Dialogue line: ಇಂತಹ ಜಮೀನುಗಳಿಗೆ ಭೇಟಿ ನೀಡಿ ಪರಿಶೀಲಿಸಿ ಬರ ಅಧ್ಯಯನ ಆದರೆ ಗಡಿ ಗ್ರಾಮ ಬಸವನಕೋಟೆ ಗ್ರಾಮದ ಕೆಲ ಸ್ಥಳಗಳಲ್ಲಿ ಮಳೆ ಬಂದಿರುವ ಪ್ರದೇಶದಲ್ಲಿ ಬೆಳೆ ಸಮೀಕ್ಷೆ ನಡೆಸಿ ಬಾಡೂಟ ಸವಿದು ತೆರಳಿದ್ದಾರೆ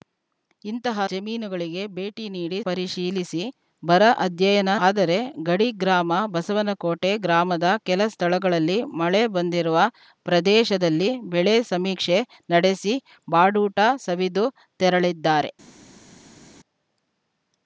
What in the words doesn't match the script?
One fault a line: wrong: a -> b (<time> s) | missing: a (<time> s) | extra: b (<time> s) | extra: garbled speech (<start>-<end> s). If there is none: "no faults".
no faults